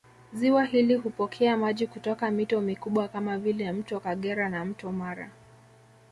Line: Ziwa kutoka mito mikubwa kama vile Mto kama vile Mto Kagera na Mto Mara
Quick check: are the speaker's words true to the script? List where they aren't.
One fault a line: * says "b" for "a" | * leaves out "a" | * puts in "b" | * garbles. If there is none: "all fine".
* puts in "hili hupokea maji"
* leaves out "kama vile Mto"